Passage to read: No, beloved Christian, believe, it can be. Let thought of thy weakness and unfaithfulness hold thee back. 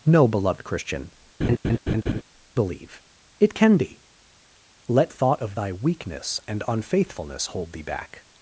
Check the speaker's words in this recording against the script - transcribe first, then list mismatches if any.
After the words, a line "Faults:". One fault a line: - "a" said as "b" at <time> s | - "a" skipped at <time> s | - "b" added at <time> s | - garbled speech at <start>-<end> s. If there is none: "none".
No, beloved Christian, believe, it can be. Let thought of thy weakness and unfaithfulness hold thee back.
Faults:
none